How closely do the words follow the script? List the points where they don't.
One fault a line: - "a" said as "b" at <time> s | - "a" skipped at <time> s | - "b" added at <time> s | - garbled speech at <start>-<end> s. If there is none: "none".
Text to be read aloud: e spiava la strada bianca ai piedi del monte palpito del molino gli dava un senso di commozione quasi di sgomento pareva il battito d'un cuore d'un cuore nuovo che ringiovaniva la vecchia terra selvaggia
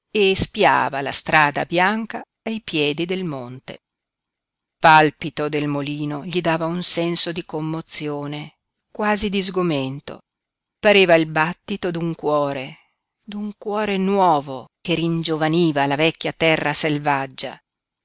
none